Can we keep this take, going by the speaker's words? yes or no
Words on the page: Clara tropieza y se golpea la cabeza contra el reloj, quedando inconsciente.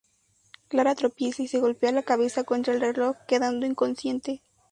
yes